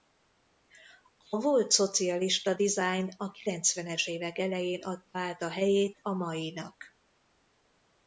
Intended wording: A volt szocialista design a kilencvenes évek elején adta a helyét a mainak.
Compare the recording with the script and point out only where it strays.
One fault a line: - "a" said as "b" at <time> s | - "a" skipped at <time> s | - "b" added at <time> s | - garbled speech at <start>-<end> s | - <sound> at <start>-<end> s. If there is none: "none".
- "át" added at 5.2 s